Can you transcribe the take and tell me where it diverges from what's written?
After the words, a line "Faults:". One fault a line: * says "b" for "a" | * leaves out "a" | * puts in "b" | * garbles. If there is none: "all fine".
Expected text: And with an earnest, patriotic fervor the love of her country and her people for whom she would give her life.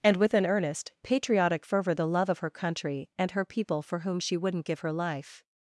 And with an earnest, patriotic fervor the love of her country and her people for whom she wouldn't give her life.
Faults:
* says "wouldn't" for "would"